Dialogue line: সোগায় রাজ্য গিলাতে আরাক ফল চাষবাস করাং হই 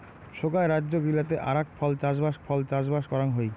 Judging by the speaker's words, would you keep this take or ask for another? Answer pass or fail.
fail